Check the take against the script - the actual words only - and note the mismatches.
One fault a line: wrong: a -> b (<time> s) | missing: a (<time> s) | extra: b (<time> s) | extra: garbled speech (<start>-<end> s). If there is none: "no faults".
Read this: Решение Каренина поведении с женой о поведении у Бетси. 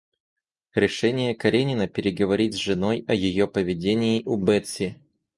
wrong: поведении -> переговорить (1.9 s)
extra: ее (3.1 s)